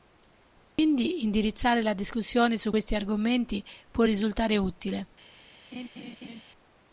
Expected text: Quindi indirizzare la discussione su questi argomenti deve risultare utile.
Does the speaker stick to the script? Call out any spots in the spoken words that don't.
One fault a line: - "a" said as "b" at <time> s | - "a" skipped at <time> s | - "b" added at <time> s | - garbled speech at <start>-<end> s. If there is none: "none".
- "deve" said as "può" at 3.9 s